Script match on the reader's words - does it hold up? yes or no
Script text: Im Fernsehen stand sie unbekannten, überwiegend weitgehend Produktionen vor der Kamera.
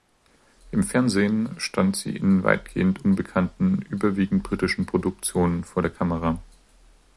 no